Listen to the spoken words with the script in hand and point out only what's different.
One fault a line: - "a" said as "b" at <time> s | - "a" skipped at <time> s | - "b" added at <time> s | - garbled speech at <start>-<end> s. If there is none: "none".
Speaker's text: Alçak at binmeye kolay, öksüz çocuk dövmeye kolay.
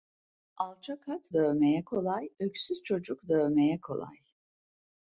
- "binmeye" said as "dövmeye" at 1.3 s